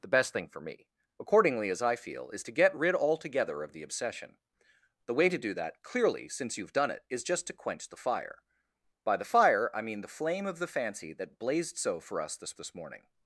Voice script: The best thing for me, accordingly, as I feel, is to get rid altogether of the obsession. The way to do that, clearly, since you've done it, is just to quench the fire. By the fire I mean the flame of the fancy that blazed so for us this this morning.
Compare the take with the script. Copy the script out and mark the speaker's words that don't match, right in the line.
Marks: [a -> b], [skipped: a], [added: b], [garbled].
The best thing for me, accordingly, as I feel, is to get rid altogether of the obsession. The way to do that, clearly, since you've done it, is just to quench the fire. By the fire I mean the flame of the fancy that blazed so for us this this morning.